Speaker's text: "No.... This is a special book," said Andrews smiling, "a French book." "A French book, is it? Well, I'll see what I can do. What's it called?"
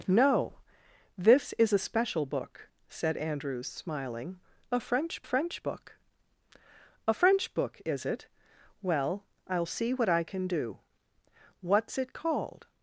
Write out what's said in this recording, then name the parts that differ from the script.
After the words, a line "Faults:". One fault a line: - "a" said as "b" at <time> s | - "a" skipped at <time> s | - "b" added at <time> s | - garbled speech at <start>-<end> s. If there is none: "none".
"No.... This is a special book," said Andrews smiling, "a French French book." "A French book, is it? Well, I'll see what I can do. What's it called?"
Faults:
- "French" added at 5.2 s